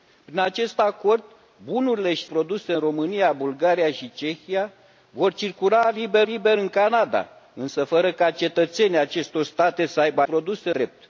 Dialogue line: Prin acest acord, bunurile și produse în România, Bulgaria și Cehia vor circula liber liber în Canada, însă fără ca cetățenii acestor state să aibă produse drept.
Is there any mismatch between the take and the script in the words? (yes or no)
no